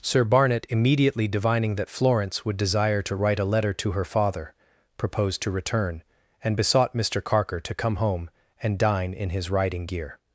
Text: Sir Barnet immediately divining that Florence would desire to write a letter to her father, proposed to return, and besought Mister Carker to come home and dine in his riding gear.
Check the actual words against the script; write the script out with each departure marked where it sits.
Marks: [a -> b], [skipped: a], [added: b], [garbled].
Sir Barnet immediately divining that Florence would desire to write a letter to her father, proposed to return, and besought Mister Carker to come home and dine in his riding gear.